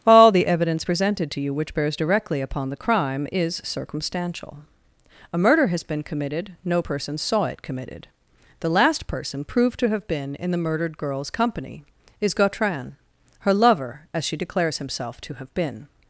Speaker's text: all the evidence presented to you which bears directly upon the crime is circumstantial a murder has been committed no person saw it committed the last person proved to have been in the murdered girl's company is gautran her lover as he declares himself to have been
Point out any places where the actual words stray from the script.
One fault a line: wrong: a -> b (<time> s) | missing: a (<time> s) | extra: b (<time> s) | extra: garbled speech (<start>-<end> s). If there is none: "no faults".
wrong: he -> she (14.2 s)